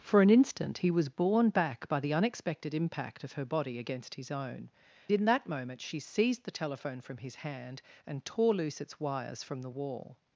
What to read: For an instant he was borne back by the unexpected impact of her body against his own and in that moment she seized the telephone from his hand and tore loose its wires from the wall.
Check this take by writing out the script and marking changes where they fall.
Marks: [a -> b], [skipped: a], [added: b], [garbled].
For an instant he was borne back by the unexpected impact of her body against his own [skipped: and] in that moment she seized the telephone from his hand and tore loose its wires from the wall.